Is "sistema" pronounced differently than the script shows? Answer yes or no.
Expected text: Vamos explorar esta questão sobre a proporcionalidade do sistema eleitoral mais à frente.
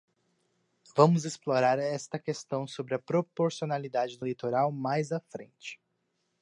yes